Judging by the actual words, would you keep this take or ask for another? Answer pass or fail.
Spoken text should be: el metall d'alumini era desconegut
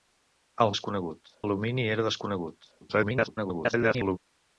fail